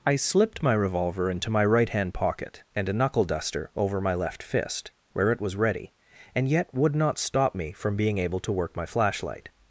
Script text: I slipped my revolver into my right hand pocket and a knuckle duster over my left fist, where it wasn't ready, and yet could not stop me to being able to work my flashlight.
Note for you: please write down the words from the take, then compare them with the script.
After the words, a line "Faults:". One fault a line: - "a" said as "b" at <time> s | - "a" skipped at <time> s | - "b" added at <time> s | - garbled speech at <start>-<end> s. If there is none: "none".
I slipped my revolver into my right hand pocket and a knuckle duster over my left fist, where it was ready, and yet would not stop me from being able to work my flashlight.
Faults:
- "wasn't" said as "was" at 5.4 s
- "could" said as "would" at 6.7 s
- "to" said as "from" at 7.7 s